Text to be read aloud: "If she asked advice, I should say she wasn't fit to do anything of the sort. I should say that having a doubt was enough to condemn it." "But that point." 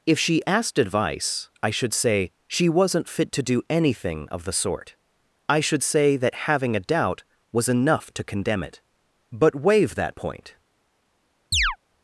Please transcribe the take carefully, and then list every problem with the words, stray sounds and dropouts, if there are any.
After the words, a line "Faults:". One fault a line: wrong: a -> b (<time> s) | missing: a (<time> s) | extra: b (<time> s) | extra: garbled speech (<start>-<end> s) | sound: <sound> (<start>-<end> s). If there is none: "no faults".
"If she asked advice, I should say she wasn't fit to do anything of the sort. I should say that having a doubt was enough to condemn it." "But waive that point."
Faults:
extra: waive (9.5 s)
sound: chirp (11.5-11.8 s)